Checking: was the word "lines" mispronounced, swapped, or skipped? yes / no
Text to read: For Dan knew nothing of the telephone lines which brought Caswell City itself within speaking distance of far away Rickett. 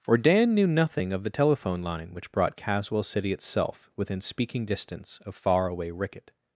yes